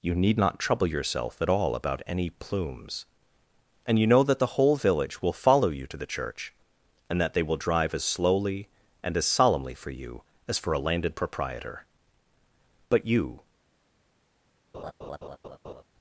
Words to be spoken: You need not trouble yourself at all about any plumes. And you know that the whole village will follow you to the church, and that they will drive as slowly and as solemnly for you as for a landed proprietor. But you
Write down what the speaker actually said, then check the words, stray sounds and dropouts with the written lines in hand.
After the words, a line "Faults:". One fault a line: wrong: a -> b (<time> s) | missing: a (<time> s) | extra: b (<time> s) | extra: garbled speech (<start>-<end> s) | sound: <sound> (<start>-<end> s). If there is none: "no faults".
You need not trouble yourself at all about any plumes. And you know that the whole village will follow you to the church, and that they will drive as slowly and as solemnly for you as for a landed proprietor. But you
Faults:
sound: laugh (14.7-15.8 s)